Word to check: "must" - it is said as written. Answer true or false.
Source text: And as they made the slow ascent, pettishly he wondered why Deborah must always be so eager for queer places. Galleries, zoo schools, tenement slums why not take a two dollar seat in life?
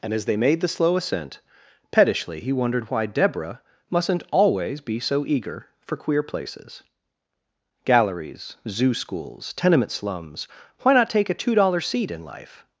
false